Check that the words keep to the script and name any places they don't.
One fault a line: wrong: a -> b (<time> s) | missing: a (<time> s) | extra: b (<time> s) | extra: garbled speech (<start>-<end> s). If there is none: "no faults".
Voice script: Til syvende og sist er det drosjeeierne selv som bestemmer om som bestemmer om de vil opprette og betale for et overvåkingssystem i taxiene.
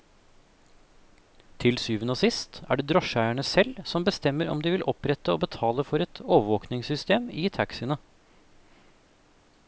missing: som bestemmer om (4.6 s)